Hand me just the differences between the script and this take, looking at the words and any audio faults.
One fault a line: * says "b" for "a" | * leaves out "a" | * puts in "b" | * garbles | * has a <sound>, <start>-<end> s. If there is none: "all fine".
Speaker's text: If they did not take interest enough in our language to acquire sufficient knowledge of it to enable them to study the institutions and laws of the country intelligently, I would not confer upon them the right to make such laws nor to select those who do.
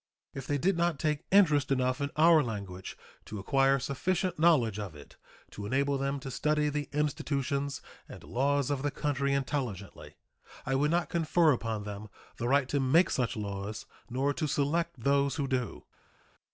all fine